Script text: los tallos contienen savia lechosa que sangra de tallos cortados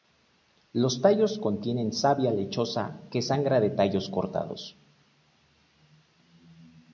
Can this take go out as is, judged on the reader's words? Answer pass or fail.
pass